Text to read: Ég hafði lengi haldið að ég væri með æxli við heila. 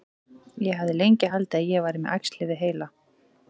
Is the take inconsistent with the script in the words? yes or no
no